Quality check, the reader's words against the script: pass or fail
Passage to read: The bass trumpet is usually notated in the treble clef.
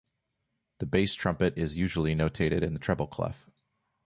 pass